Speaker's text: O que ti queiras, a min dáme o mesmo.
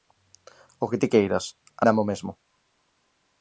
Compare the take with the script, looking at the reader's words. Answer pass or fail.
fail